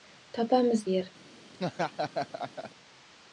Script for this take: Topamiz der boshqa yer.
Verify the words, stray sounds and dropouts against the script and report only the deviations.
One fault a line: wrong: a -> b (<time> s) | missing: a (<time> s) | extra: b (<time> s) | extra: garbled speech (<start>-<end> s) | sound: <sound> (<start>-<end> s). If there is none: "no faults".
missing: der boshqa (0.8 s)
sound: laugh (1.5-2.7 s)